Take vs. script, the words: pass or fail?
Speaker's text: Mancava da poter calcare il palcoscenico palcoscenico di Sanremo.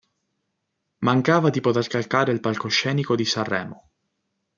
fail